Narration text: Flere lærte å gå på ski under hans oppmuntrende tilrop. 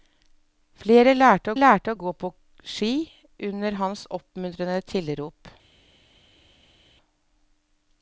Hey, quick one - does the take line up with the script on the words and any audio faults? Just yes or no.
no